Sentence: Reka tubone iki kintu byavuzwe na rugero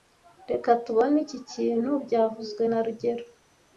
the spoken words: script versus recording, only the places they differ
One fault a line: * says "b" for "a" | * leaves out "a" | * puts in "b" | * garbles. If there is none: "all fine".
all fine